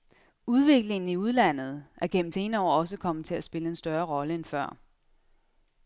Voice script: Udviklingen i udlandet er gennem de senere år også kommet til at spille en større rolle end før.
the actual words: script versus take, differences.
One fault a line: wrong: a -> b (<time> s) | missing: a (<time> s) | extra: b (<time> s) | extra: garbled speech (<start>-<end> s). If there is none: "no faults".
missing: de (2.3 s)